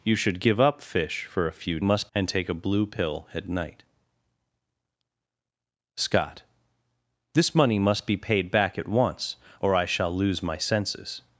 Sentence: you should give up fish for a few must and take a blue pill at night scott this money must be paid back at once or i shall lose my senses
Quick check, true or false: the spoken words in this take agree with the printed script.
true